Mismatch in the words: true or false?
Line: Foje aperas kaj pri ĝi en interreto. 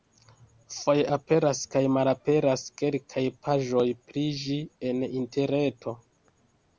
true